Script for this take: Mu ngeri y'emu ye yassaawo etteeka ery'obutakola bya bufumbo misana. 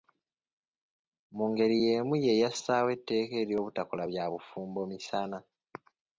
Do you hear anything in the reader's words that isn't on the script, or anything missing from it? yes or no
no